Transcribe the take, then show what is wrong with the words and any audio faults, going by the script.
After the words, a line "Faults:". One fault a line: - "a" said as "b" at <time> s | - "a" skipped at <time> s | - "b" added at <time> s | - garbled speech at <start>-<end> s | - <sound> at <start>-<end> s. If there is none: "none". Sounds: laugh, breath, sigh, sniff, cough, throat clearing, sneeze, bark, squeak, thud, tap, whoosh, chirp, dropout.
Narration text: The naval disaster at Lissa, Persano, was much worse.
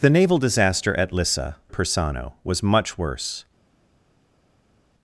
The naval disaster at Lissa, Persano, was much worse.
Faults:
none